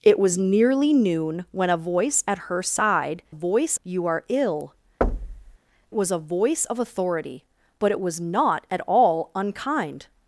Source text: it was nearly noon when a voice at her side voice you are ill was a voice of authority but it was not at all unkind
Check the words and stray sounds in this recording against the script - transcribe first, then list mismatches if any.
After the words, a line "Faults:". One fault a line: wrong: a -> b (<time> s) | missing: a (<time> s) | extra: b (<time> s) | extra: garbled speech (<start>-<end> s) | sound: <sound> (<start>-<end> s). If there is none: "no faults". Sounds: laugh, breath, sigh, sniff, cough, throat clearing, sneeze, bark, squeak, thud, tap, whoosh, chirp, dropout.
it was nearly noon when a voice at her side voice you are ill was a voice of authority but it was not at all unkind
Faults:
sound: thud (5.0-5.6 s)